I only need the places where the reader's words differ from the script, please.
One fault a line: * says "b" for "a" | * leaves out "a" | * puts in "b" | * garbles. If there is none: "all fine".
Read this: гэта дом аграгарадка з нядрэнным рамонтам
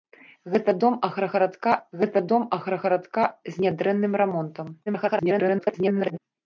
* puts in "гэта дом аграгарадка"
* garbles